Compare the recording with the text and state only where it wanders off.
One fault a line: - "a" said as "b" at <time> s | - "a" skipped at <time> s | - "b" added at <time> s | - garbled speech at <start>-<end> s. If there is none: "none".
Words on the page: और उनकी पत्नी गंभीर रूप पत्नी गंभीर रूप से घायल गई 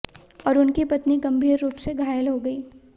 - "पत्नी गंभीर रूप" skipped at 1.8 s
- "हो" added at 2.3 s